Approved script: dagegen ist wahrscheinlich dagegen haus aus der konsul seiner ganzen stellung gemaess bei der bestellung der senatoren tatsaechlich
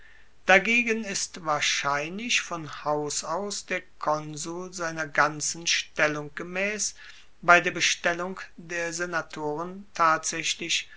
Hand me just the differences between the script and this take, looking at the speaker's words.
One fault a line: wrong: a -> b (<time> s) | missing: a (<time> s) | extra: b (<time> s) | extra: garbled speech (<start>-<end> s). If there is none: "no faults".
wrong: dagegen -> von (2.4 s)